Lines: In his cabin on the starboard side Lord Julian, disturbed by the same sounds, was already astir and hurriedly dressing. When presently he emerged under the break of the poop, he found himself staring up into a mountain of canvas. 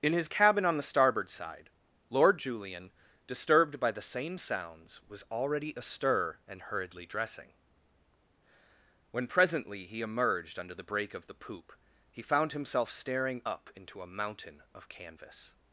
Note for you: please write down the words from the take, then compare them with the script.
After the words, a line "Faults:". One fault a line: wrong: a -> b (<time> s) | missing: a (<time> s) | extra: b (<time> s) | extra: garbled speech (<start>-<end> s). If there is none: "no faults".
In his cabin on the starboard side Lord Julian, disturbed by the same sounds, was already astir and hurriedly dressing. When presently he emerged under the break of the poop, he found himself staring up into a mountain of canvas.
Faults:
no faults